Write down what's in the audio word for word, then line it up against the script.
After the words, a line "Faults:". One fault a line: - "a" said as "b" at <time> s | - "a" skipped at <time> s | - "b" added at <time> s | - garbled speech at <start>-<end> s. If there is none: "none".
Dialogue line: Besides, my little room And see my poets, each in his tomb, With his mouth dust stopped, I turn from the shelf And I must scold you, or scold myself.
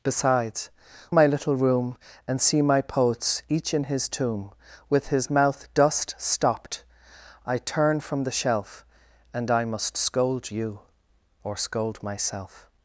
Besides, my little room And see my poets, each in his tomb, With his mouth dust stopped, I turn from the shelf And I must scold you, or scold myself.
Faults:
none